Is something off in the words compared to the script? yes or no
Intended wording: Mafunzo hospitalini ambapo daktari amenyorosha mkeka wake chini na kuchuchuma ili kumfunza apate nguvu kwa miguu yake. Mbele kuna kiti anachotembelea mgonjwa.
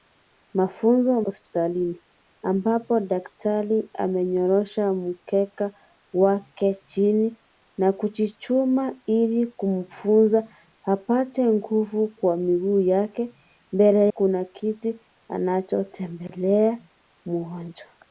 no